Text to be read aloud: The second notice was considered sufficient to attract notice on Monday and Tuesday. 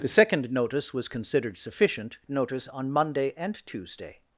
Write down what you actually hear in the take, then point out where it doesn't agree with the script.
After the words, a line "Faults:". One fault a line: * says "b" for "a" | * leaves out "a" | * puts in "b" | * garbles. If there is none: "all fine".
The second notice was considered sufficient notice on Monday and Tuesday.
Faults:
* leaves out "to attract"